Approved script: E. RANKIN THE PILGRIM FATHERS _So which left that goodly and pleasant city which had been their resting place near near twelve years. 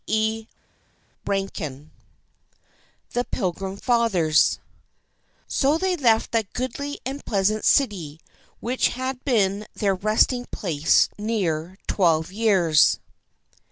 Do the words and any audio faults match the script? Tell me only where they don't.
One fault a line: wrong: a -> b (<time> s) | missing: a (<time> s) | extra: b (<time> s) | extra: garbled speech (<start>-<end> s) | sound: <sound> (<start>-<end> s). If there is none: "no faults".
wrong: which -> they (5.8 s)
missing: near (11.8 s)